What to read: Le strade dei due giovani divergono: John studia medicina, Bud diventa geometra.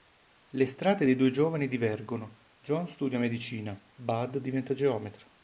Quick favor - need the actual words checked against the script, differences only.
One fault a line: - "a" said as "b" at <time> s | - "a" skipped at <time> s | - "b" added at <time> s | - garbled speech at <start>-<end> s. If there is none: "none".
none